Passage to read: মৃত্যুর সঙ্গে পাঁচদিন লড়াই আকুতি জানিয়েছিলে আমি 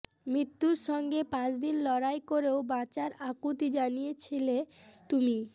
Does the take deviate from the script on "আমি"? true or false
true